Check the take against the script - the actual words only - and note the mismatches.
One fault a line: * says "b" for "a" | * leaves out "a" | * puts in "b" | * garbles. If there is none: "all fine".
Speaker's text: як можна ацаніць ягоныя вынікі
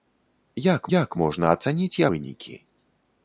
* puts in "як"
* leaves out "ягоныя"